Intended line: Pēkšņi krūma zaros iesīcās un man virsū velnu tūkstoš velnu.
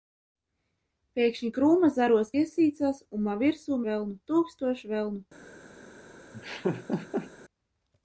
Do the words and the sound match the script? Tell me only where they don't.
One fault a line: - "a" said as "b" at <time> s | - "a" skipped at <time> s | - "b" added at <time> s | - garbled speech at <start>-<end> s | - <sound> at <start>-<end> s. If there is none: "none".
- laugh at 6.3-7.3 s